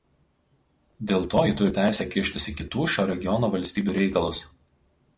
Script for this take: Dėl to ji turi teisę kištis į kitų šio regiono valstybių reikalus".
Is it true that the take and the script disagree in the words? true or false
false